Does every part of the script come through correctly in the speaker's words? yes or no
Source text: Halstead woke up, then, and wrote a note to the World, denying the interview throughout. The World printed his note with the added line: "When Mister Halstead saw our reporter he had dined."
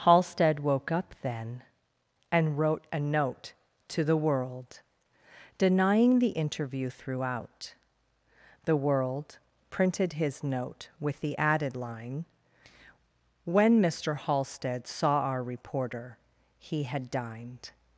yes